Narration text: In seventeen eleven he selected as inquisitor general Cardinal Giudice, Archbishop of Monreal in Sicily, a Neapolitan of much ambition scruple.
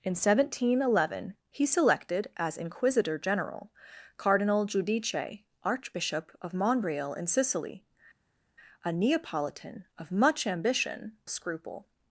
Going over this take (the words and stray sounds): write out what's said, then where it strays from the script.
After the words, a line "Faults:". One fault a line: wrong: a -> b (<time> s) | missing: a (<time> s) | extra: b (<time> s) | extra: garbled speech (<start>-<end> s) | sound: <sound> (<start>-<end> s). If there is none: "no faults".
In seventeen eleven he selected as inquisitor general Cardinal Giudice, Archbishop of Monreal in Sicily, a Neapolitan of much ambition scruple.
Faults:
no faults